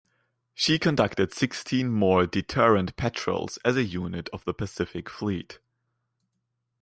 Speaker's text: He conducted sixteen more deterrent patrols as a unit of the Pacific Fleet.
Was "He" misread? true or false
true